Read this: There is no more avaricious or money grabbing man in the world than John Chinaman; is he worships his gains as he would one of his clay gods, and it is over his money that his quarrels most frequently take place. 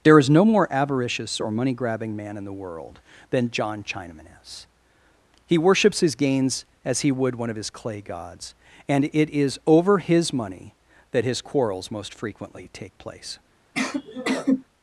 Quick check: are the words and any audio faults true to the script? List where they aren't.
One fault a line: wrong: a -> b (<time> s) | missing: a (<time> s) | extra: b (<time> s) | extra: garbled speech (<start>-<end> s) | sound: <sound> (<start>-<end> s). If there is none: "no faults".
sound: sneeze (13.7-14.6 s)